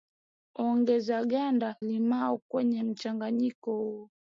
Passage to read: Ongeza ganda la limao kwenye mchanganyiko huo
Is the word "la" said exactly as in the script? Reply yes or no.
no